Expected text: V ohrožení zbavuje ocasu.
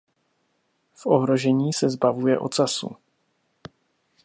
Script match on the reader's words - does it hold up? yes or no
no